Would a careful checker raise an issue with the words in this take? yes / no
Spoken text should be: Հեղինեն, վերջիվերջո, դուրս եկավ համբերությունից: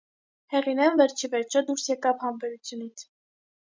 no